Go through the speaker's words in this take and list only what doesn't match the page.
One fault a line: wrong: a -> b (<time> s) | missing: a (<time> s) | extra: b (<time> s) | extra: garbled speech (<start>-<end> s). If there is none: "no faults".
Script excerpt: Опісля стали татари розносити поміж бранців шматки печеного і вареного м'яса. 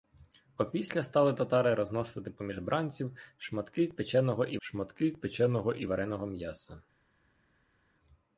extra: шматки печеного і (4.6 s)